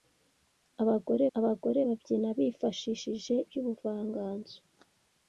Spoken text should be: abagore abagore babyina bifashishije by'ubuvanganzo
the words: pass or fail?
pass